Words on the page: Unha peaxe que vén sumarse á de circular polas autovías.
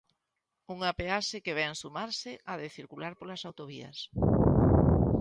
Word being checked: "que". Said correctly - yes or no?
yes